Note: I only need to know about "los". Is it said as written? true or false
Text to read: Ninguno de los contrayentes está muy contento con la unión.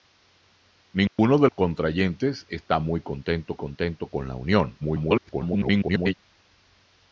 false